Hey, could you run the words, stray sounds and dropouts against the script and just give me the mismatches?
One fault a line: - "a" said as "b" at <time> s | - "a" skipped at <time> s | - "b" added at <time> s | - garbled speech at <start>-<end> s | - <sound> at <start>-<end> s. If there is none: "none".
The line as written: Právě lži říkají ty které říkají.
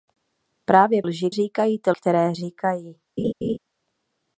- laugh at 3.2-3.6 s